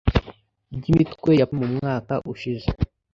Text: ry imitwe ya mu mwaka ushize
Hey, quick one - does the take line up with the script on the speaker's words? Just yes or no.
yes